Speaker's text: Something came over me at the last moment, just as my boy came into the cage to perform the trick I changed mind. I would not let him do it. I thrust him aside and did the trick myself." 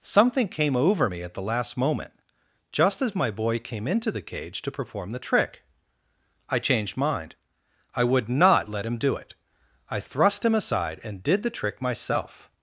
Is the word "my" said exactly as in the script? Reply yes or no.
yes